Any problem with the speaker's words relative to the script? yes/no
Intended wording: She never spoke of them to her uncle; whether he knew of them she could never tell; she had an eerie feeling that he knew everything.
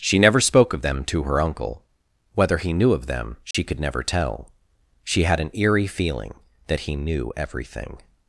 no